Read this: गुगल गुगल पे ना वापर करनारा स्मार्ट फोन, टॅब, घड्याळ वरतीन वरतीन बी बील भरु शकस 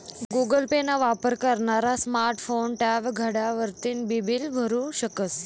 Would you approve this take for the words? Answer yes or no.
no